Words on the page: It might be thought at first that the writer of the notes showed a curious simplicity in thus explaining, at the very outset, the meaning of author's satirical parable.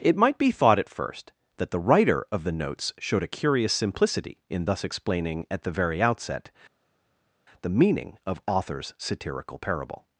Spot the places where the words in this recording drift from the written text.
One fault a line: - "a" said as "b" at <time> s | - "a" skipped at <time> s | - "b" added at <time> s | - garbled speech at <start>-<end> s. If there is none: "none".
none